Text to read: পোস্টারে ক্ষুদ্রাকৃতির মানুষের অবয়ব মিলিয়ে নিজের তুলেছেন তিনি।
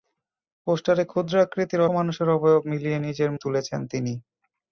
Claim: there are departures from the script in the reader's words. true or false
false